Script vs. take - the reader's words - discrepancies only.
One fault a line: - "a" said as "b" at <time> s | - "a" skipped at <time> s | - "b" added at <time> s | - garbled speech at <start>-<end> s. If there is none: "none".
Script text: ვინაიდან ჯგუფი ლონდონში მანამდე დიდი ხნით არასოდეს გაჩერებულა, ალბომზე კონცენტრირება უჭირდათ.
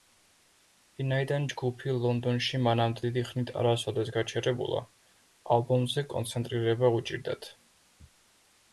none